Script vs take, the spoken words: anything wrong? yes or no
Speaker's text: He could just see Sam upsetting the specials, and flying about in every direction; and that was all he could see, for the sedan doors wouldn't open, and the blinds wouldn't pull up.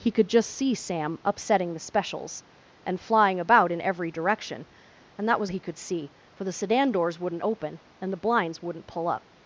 yes